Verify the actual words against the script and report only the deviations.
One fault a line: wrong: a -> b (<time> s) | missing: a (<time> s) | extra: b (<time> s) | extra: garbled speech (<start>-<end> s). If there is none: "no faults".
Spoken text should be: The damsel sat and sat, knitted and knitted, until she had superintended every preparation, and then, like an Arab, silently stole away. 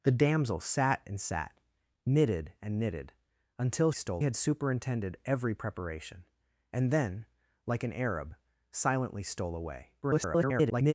wrong: she -> stole (3.9 s)
extra: garbled speech (10.0-10.9 s)